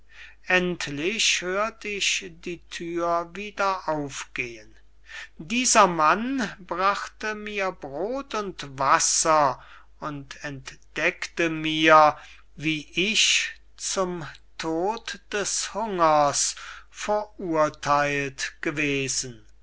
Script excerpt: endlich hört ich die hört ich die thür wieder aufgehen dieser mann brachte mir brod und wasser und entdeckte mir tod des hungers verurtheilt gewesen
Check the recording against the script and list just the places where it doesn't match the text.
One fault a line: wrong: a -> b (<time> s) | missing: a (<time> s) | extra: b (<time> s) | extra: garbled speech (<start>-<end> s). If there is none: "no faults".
missing: hört ich die (2.6 s)
extra: wie ich zum (12.5 s)